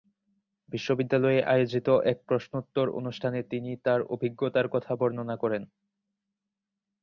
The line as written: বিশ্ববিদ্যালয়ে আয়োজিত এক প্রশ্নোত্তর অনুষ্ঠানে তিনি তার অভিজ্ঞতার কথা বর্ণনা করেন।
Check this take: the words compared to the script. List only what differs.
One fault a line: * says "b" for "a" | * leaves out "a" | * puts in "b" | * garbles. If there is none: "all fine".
all fine